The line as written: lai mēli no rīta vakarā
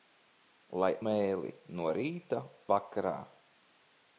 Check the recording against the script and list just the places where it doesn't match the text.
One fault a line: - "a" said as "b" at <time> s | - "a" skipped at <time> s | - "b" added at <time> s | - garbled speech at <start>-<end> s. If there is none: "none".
none